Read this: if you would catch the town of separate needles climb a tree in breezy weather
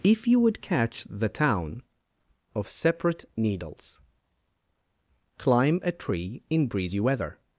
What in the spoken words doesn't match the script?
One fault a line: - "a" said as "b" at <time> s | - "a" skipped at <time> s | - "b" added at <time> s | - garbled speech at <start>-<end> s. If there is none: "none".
none